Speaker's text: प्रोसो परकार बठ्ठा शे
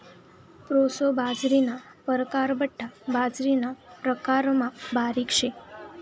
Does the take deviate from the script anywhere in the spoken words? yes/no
yes